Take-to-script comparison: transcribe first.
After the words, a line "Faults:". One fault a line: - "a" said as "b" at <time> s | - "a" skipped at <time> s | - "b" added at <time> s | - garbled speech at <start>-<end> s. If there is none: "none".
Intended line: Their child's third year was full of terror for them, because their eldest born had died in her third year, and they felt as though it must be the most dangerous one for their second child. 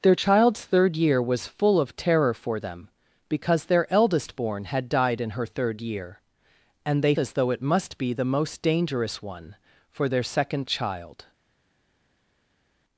Their child's third year was full of terror for them, because their eldest born had died in her third year, and they as though it must be the most dangerous one for their second child.
Faults:
- "felt" skipped at 7.1 s